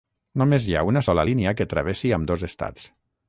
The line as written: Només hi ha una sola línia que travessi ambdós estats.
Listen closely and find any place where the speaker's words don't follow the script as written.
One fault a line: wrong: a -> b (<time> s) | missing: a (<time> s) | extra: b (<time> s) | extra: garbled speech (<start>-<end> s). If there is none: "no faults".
no faults